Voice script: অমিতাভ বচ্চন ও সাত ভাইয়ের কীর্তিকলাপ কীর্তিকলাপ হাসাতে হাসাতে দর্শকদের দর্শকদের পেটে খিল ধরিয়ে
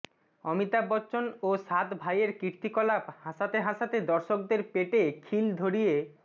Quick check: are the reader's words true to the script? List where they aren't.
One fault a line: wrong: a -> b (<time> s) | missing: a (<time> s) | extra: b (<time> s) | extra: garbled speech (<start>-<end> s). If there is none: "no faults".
missing: কীর্তিকলাপ (3.0 s)
missing: দর্শকদের (4.6 s)